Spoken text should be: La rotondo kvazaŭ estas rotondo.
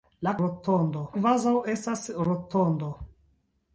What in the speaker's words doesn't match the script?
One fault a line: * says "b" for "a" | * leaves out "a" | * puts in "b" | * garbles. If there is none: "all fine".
all fine